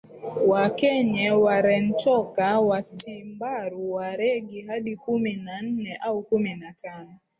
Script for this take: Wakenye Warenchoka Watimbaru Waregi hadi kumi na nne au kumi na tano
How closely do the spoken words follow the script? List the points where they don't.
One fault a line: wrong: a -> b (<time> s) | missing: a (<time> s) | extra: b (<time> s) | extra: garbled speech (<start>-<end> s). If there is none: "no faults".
no faults